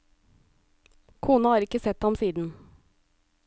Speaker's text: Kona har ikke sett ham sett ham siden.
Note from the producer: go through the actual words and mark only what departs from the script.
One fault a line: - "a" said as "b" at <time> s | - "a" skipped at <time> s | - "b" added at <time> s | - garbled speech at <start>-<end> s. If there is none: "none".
- "sett ham" skipped at 2.1 s